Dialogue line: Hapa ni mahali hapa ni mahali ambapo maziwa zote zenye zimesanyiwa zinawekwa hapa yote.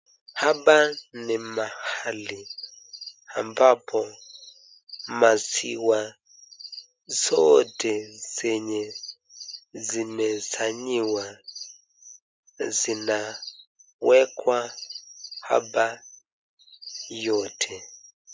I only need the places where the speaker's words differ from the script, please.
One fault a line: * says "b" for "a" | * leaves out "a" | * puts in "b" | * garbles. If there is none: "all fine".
* leaves out "hapa ni mahali"